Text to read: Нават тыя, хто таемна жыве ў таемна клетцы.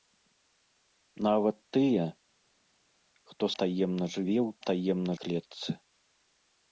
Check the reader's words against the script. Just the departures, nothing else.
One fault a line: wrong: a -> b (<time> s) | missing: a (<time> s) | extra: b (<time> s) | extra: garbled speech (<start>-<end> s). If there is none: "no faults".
no faults